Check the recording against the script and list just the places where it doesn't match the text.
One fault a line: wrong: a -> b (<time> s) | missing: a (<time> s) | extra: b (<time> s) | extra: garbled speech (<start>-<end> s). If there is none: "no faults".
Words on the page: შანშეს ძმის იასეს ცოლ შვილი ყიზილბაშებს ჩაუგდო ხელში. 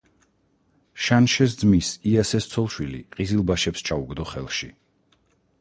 no faults